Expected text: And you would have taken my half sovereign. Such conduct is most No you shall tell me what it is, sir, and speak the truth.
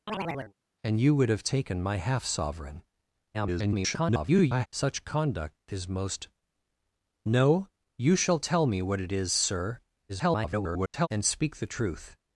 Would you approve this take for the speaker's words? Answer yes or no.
no